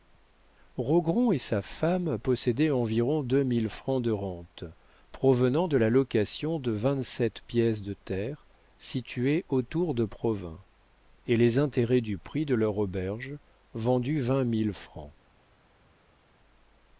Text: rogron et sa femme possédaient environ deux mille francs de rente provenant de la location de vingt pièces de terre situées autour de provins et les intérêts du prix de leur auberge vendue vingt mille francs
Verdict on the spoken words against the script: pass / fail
fail